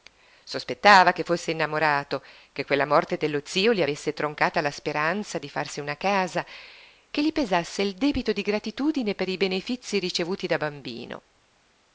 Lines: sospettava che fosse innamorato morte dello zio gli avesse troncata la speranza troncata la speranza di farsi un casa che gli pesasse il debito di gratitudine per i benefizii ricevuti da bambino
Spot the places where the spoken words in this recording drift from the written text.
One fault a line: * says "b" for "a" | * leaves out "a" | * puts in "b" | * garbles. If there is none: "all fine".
* puts in "che quella"
* leaves out "troncata la speranza"
* says "una" for "un"